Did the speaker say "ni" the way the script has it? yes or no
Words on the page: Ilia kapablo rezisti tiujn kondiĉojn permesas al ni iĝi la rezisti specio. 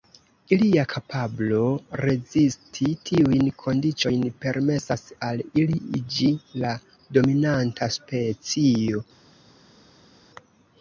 no